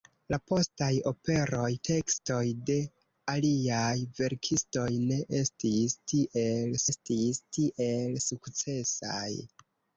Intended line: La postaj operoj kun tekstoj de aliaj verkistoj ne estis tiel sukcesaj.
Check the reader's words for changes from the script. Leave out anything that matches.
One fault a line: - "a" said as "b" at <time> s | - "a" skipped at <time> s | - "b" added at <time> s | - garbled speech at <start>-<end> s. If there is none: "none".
- "kun" skipped at 1.7 s
- "estis tiel" added at 6.9 s